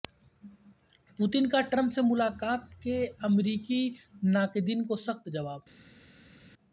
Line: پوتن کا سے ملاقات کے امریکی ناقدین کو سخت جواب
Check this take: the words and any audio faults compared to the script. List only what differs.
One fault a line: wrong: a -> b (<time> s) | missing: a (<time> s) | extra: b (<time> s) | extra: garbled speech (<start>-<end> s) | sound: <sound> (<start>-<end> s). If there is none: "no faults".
extra: ٹرمپ (1.6 s)